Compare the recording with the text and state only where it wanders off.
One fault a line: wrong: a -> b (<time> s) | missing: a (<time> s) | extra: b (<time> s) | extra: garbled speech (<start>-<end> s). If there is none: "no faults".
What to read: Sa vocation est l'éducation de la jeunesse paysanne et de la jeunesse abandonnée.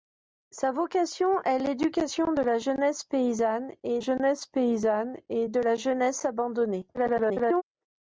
extra: jeunesse paysanne et (4.0 s)
extra: garbled speech (6.9-7.6 s)